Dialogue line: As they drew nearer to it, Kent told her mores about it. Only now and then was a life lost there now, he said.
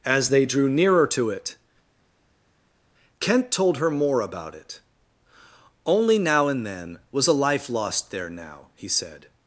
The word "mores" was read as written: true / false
false